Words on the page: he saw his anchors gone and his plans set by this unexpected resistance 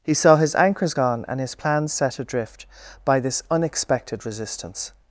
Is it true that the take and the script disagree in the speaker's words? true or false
true